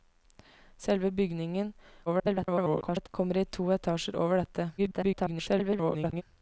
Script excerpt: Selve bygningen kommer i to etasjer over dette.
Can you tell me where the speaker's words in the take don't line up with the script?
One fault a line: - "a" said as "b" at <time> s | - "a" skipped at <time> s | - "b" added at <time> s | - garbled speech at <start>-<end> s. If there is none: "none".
- garbled speech at 2.1-3.1 s
- garbled speech at 4.8-6.2 s